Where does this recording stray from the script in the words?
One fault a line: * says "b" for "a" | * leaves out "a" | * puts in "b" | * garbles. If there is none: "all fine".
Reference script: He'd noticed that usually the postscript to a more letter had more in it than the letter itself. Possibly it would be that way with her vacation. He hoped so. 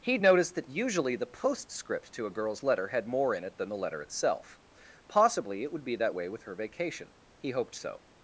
* says "girl's" for "more"